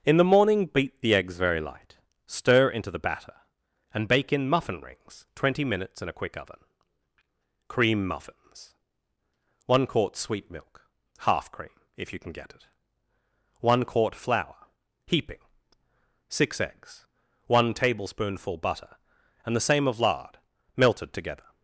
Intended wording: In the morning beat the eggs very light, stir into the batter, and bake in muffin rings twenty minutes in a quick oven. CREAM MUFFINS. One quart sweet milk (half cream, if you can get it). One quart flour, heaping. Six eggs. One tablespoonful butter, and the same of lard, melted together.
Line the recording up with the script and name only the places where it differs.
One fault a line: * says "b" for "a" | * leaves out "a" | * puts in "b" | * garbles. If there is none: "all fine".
all fine